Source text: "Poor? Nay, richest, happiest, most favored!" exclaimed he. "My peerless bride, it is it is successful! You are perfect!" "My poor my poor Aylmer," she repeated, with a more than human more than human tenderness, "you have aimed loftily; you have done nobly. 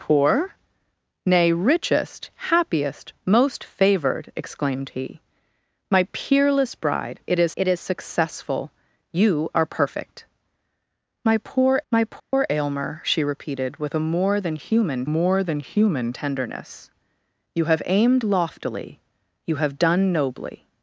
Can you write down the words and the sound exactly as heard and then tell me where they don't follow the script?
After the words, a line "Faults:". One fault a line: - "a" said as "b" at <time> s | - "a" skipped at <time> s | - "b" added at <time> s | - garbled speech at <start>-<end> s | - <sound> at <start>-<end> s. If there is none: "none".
"Poor? Nay, richest, happiest, most favored!" exclaimed he. "My peerless bride, it is it is successful! You are perfect!" "My poor my poor Aylmer," she repeated, with a more than human more than human tenderness, "you have aimed loftily; you have done nobly.
Faults:
- dropout at 12.2-12.3 s